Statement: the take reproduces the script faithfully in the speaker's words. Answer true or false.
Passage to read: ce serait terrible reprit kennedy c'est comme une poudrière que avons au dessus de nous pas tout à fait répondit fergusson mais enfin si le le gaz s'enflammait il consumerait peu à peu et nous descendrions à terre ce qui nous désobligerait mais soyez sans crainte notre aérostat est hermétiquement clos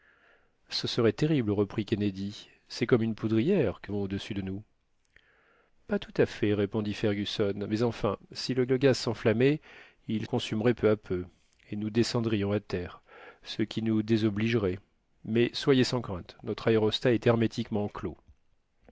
true